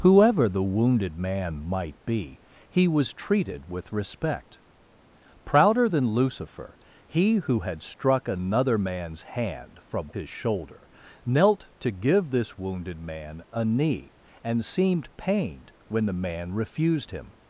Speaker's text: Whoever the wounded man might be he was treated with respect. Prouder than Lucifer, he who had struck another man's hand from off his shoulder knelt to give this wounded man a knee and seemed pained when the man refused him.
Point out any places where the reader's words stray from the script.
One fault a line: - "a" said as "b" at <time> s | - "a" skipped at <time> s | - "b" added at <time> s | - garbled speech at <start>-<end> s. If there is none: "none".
- "off" skipped at 10.1 s